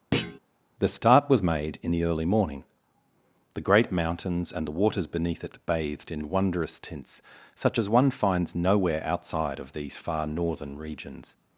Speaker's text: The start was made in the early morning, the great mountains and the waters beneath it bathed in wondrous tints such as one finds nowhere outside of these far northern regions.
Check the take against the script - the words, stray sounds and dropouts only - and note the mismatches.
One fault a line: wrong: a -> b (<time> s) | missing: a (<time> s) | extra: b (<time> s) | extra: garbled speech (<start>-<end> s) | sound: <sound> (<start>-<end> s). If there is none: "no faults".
sound: thud (0.1-0.4 s)